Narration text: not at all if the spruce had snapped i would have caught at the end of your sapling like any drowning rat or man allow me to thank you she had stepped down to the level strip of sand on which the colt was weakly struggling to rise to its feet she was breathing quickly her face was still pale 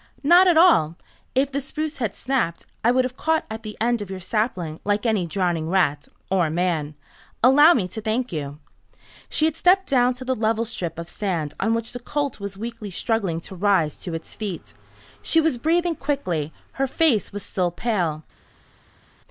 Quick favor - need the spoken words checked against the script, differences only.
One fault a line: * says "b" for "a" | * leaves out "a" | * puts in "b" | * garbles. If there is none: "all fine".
all fine